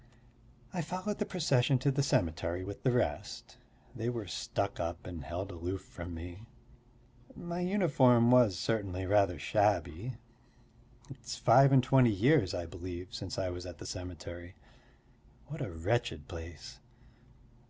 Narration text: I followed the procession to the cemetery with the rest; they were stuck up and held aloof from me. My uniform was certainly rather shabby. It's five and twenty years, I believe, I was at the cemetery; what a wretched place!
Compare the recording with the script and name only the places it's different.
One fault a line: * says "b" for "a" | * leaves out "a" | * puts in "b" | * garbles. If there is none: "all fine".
* puts in "since"